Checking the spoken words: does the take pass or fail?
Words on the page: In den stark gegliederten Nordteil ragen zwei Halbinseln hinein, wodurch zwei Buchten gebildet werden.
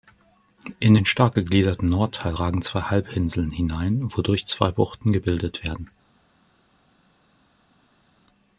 pass